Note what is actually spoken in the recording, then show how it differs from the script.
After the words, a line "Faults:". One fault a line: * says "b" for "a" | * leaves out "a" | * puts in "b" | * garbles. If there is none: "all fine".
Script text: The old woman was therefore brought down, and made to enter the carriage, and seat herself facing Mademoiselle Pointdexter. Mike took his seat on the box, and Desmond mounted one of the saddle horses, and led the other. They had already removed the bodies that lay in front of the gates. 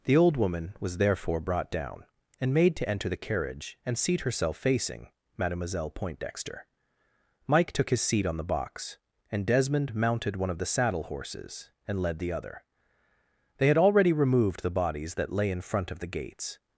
The old woman was therefore brought down, and made to enter the carriage, and seat herself facing Mademoiselle Pointdexter. Mike took his seat on the box, and Desmond mounted one of the saddle horses, and led the other. They had already removed the bodies that lay in front of the gates.
Faults:
all fine